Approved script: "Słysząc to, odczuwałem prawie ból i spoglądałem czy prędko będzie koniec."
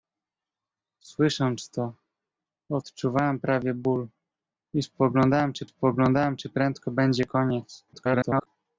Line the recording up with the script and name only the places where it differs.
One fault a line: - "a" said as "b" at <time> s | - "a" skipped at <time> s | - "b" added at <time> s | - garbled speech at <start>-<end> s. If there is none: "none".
- "spoglądałem czy" added at 5.6 s
- garbled speech at 7.9-8.5 s